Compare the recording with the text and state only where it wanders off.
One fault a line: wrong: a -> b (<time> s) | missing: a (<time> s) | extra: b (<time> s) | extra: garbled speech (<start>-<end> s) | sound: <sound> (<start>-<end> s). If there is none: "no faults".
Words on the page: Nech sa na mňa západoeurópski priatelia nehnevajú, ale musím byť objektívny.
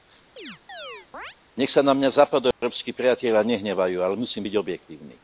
sound: chirp (0.4-1.4 s)
sound: dropout (2.5-2.6 s)